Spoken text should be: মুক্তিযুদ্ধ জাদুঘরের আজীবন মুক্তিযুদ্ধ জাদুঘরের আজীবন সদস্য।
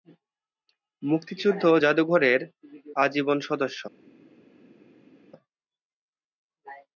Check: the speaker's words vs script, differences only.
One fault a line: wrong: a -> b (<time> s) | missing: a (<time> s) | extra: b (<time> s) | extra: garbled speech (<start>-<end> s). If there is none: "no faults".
missing: মুক্তিযুদ্ধ জাদুঘরের আজীবন (3.4 s)